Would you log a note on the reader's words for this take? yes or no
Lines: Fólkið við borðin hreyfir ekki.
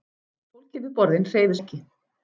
no